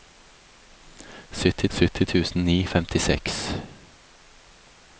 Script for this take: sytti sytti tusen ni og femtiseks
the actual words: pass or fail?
pass